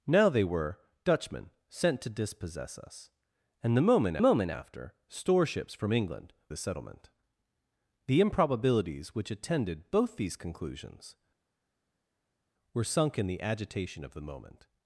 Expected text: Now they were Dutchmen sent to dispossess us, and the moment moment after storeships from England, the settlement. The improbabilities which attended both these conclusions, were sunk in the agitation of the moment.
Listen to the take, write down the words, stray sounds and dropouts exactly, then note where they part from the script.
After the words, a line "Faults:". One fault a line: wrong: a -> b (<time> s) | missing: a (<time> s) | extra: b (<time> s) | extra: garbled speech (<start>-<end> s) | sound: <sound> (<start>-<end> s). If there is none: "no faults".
Now they were Dutchmen sent to dispossess us, and the moment moment after storeships from England, the settlement. The improbabilities which attended both these conclusions, were sunk in the agitation of the moment.
Faults:
no faults